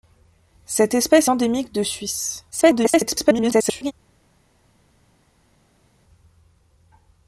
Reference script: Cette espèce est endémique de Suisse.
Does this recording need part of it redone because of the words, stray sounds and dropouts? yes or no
yes